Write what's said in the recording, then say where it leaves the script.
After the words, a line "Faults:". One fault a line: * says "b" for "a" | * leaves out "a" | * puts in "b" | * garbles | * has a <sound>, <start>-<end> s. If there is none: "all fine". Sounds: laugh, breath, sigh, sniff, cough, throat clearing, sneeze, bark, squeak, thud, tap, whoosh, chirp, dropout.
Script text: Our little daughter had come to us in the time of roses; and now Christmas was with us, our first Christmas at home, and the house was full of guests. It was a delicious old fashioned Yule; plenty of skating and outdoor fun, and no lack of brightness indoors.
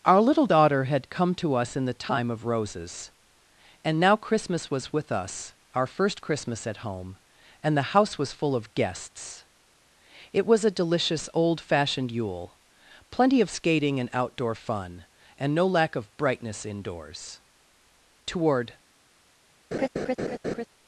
Our little daughter had come to us in the time of roses; and now Christmas was with us, our first Christmas at home, and the house was full of guests. It was a delicious old fashioned Yule; plenty of skating and outdoor fun, and no lack of brightness indoors. Toward
Faults:
* puts in "Toward"
* has a laugh, 19.7-20.7 s